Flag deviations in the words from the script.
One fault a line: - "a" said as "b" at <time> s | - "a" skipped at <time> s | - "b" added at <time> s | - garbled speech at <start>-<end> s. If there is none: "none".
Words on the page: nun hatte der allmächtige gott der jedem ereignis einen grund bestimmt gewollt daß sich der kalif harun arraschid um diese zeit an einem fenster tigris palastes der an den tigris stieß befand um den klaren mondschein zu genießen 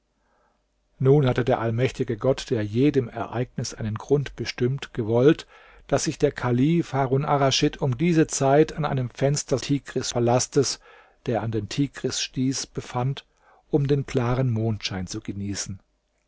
none